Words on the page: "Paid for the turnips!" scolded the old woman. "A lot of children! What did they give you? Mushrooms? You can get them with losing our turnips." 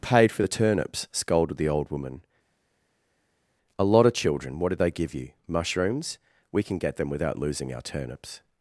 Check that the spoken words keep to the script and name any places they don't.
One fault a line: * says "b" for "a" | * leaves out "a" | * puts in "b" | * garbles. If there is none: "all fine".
* says "We" for "You"
* says "without" for "with"